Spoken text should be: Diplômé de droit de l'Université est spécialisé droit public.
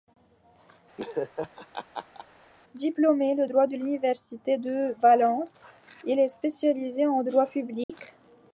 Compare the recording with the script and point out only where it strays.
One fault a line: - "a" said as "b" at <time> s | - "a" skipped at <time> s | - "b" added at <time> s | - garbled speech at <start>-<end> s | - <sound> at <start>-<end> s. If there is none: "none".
- laugh at 1.0-2.3 s
- "de Valence il" added at 4.6 s
- "en" added at 7.1 s
- dropout at 7.8-7.9 s